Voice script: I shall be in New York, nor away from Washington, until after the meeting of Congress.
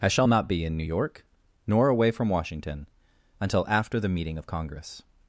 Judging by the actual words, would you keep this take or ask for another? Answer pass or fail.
fail